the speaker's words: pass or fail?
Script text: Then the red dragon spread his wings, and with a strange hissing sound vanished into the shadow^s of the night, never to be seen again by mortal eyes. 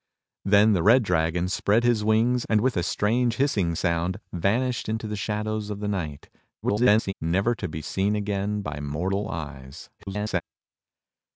fail